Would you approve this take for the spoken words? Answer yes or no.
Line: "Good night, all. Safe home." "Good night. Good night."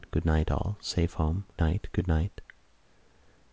no